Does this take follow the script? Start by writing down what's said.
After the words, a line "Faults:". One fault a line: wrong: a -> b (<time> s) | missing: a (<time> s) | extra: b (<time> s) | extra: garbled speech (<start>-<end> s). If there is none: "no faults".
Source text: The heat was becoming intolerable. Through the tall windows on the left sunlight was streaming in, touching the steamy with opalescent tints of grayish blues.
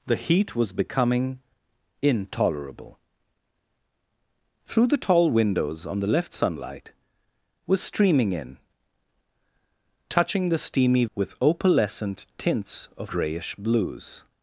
The heat was becoming intolerable. Through the tall windows on the left sunlight was streaming in, touching the steamy with opalescent tints of grayish blues.
Faults:
no faults